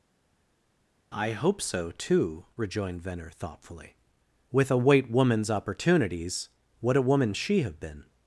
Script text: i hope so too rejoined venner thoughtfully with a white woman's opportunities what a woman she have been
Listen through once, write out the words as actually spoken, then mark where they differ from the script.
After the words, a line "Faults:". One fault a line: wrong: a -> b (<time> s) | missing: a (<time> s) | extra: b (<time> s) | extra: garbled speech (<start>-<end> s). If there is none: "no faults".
i hope so too rejoined venner thoughtfully with a white woman's opportunities what a woman she have been
Faults:
no faults